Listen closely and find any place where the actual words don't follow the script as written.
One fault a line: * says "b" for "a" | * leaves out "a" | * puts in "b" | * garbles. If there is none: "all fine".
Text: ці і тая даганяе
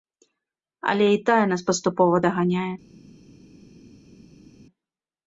* says "але" for "ці"
* puts in "нас паступова"